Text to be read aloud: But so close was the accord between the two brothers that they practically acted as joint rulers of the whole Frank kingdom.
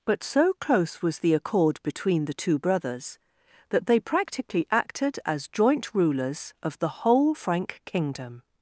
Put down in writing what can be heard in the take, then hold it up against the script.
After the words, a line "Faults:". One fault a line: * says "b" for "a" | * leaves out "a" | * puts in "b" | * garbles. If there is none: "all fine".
But so close was the accord between the two brothers that they practically acted as joint rulers of the whole Frank kingdom.
Faults:
all fine